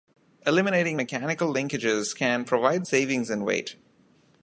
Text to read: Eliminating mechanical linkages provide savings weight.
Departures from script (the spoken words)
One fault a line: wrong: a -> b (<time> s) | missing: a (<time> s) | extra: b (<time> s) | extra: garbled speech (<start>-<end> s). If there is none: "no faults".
extra: can (2.1 s)
extra: in (3.3 s)